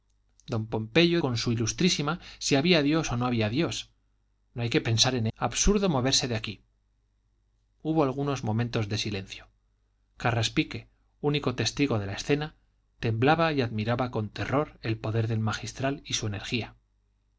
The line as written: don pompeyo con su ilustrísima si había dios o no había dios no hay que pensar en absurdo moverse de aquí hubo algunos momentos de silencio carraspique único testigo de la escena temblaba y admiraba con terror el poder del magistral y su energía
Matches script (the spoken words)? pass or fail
pass